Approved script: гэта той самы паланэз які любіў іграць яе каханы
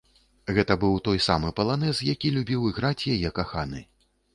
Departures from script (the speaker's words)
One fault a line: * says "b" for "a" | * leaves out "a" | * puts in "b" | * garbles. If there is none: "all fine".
* puts in "быў"